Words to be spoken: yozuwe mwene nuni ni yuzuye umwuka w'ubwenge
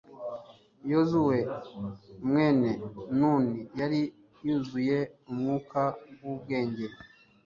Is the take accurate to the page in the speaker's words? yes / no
no